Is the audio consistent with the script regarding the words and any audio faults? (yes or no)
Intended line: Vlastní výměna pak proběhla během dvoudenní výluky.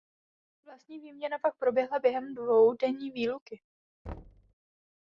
no